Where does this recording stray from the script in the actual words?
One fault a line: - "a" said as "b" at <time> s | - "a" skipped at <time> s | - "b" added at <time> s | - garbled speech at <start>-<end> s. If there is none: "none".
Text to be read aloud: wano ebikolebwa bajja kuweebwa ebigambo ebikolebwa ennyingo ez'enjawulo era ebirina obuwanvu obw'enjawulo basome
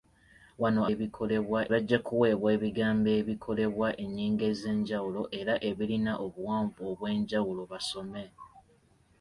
none